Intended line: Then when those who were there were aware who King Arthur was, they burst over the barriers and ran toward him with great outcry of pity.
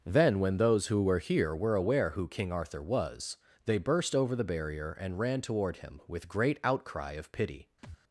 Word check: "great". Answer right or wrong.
right